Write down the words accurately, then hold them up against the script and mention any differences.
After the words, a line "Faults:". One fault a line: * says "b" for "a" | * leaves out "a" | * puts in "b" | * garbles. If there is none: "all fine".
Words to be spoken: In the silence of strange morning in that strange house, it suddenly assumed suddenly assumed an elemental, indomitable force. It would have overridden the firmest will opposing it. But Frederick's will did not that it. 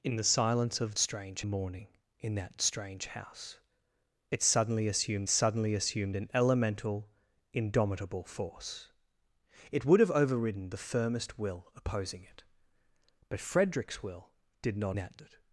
In the silence of strange morning in that strange house, it suddenly assumed suddenly assumed an elemental, indomitable force. It would have overridden the firmest will opposing it. But Frederick's will did not that it.
Faults:
all fine